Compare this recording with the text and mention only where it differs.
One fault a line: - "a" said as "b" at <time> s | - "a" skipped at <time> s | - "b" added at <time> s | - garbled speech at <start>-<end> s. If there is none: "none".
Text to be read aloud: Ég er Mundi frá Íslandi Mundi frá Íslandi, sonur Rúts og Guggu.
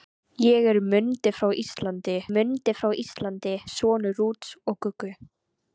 none